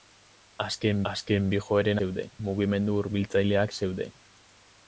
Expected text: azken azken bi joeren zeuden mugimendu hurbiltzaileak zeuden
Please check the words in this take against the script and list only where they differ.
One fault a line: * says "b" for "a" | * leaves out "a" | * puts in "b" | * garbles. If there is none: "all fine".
all fine